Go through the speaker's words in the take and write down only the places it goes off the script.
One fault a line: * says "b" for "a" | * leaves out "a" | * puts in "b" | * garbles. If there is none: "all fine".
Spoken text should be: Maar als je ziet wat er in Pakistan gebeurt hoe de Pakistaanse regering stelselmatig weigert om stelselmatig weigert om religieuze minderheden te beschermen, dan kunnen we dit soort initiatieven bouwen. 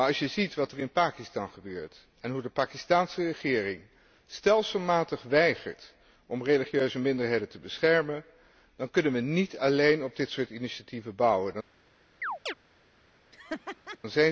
* puts in "en"
* leaves out "stelselmatig weigert om"
* puts in "niet alleen op"